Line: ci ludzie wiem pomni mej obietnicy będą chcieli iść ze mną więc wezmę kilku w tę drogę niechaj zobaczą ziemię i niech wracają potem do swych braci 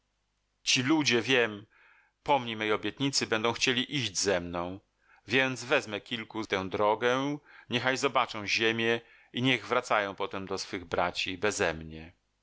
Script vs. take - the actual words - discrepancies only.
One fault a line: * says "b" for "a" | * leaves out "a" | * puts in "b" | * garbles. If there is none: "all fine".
all fine